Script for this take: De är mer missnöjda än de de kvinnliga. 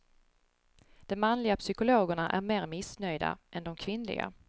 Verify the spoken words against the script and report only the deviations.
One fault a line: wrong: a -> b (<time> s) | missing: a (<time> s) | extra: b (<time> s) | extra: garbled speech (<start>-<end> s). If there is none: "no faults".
extra: manliga psykologerna (1.1 s)
missing: de (3.8 s)